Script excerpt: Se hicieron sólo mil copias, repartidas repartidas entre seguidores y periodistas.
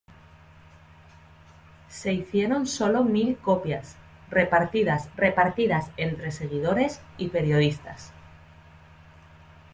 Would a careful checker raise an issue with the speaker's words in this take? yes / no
no